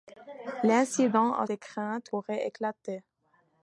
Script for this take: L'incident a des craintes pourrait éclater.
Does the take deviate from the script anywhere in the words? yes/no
no